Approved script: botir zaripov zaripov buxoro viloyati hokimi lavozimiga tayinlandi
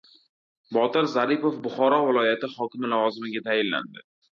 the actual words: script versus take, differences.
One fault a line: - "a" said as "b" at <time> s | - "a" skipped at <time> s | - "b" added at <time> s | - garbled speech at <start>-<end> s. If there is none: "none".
- "zaripov" skipped at 1.6 s